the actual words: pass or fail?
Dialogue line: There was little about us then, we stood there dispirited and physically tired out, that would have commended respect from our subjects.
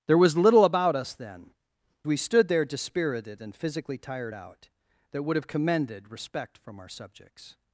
pass